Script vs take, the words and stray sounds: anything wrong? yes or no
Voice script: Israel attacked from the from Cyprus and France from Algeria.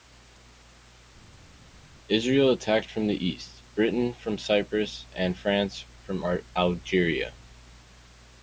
yes